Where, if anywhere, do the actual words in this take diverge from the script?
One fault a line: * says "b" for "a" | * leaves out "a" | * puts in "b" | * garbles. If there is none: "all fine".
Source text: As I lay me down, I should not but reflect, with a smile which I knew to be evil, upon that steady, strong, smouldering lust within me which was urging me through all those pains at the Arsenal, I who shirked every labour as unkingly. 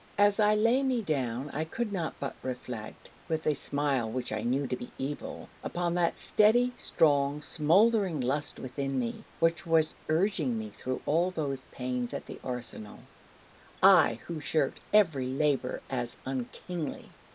* says "could" for "should"